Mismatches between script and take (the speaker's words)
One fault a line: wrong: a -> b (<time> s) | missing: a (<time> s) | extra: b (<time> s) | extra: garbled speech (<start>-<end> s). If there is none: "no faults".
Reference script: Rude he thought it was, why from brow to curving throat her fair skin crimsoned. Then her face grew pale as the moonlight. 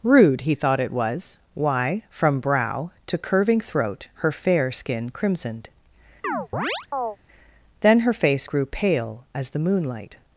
no faults